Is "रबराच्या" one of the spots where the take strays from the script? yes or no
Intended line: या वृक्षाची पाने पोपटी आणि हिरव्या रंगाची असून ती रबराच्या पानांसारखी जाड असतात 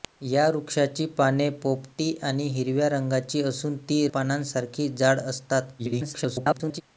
yes